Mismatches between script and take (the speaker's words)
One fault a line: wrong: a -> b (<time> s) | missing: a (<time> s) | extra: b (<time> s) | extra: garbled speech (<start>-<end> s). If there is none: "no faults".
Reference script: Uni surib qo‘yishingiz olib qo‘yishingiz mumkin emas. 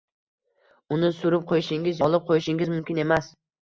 no faults